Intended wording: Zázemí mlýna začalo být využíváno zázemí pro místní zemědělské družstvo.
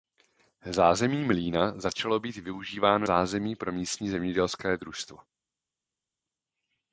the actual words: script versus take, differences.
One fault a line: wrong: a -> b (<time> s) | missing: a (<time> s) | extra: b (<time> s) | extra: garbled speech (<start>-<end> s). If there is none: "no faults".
no faults